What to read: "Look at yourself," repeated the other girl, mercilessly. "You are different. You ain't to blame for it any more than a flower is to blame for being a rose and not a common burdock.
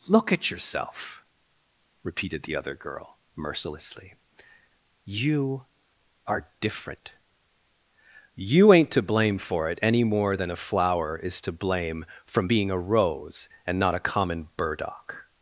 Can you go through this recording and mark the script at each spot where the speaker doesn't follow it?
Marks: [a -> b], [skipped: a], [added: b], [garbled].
"Look at yourself," repeated the other girl, mercilessly. "You are different. You ain't to blame for it any more than a flower is to blame [for -> from] being a rose and not a common burdock.